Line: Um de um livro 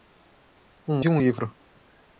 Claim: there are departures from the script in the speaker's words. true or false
false